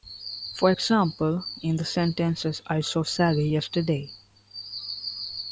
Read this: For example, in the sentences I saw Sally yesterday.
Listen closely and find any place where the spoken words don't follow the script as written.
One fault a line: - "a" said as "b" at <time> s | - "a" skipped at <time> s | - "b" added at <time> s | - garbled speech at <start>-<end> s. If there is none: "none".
none